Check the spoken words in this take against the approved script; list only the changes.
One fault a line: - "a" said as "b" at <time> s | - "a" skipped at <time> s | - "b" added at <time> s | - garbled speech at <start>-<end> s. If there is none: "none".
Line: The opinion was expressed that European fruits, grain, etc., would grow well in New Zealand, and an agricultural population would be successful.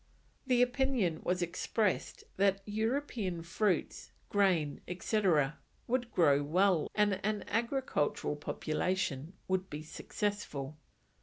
- "in New Zealand" skipped at 6.9 s